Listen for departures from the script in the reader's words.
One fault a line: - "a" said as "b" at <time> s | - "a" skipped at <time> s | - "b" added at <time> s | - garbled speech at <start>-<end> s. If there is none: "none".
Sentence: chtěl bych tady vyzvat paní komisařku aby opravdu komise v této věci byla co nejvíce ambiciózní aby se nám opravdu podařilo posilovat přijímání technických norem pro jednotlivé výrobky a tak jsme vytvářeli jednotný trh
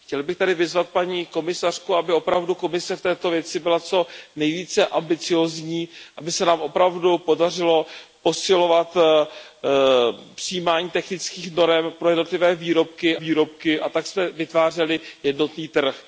- "výrobky" added at 13.1 s